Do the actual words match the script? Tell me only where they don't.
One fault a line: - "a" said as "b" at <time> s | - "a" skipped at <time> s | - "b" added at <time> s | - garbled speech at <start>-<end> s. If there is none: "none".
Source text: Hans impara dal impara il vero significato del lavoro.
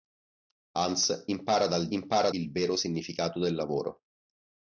none